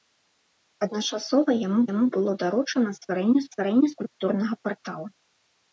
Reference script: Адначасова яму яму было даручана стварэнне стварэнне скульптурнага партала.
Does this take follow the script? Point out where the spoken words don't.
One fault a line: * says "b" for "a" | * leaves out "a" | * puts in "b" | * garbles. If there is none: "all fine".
all fine